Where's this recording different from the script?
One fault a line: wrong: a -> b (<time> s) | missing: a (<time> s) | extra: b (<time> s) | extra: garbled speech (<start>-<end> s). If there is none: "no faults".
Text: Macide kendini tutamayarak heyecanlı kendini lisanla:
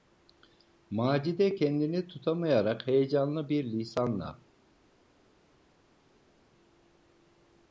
wrong: kendini -> bir (3.5 s)